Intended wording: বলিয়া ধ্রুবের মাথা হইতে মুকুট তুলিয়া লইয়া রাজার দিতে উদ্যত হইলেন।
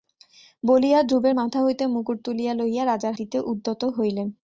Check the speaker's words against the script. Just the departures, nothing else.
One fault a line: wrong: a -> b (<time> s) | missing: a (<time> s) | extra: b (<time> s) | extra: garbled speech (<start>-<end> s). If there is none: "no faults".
no faults